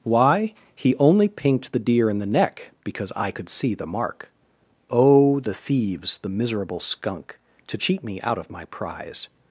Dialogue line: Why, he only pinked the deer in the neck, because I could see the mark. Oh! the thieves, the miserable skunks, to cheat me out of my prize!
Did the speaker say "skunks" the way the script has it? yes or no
no